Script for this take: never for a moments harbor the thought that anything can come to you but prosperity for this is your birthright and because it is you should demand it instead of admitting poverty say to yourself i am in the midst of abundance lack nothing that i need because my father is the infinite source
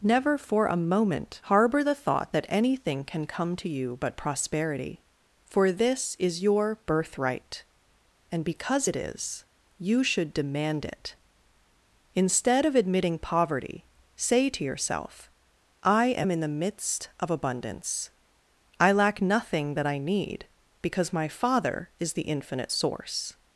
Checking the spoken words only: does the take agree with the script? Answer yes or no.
no